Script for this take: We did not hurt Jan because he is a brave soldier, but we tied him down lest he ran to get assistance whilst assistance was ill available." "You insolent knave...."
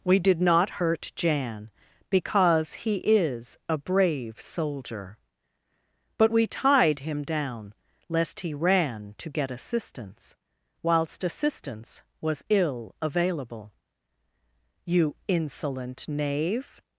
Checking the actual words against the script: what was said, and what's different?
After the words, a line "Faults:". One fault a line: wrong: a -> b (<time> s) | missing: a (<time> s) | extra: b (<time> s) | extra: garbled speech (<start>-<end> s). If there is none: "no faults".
We did not hurt Jan because he is a brave soldier, but we tied him down lest he ran to get assistance whilst assistance was ill available." "You insolent knave...."
Faults:
no faults